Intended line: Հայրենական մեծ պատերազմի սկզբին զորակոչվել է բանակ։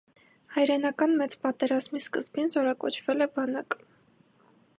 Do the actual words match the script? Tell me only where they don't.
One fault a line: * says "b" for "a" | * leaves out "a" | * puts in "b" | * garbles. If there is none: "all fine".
all fine